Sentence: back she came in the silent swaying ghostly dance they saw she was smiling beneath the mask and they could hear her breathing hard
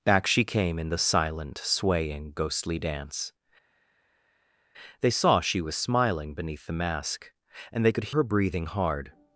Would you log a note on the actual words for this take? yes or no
yes